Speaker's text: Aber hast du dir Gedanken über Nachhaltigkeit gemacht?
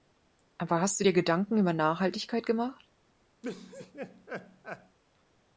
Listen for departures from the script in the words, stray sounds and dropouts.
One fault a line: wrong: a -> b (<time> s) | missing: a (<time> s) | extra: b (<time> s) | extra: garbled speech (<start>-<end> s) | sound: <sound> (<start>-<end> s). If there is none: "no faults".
sound: laugh (3.4-5.0 s)